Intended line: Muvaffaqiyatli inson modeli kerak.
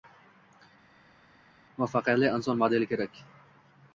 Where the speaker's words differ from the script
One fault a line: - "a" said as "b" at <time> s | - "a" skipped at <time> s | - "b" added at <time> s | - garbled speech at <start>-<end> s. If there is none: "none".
none